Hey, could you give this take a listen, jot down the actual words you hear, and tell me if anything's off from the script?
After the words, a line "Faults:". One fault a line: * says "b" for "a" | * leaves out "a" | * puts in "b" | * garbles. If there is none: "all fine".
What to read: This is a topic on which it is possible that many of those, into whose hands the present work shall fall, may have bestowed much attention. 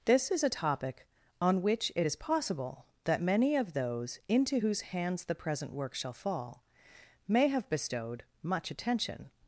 This is a topic on which it is possible that many of those, into whose hands the present work shall fall, may have bestowed much attention.
Faults:
all fine